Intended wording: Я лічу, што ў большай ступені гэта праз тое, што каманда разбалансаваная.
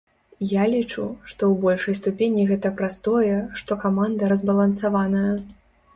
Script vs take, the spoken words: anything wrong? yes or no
no